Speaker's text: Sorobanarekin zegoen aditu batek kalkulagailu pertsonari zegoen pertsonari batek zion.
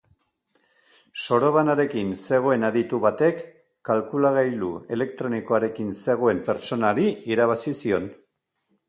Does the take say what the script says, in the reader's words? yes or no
no